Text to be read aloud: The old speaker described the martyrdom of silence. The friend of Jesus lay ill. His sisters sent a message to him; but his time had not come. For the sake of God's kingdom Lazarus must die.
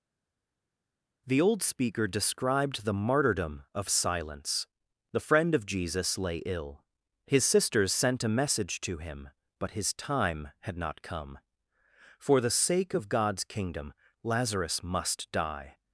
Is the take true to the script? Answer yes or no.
yes